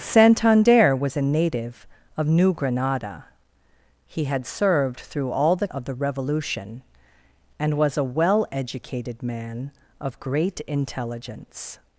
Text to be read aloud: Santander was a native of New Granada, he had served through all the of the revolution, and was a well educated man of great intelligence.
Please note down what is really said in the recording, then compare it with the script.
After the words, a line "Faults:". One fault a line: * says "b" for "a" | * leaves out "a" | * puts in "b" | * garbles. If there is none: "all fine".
Santander was a native of New Granada, he had served through all the of the revolution, and was a well educated man of great intelligence.
Faults:
all fine